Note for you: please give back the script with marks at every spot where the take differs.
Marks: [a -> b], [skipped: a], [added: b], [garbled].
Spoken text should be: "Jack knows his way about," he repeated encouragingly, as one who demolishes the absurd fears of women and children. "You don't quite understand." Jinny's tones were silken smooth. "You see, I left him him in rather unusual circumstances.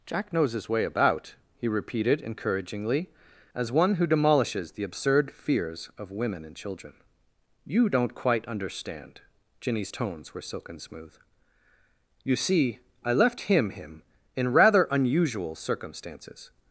"Jack knows his way about," he repeated encouragingly, as one who demolishes the absurd fears of women and children. "You don't quite understand." Jinny's tones were silken smooth. "You see, I left him him in rather unusual circumstances.